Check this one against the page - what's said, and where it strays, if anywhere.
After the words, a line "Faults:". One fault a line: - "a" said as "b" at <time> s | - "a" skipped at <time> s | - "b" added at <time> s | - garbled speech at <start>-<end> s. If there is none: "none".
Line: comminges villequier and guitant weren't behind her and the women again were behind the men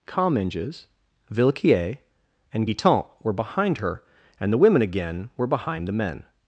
comminges villequier and guitant were behind her and the women again were behind the men
Faults:
- "weren't" said as "were" at 3.2 s